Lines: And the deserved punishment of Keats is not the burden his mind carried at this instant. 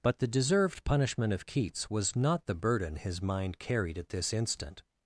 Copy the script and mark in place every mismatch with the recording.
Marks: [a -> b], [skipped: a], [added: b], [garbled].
[And -> But] the deserved punishment of Keats [is -> was] not the burden his mind carried at this instant.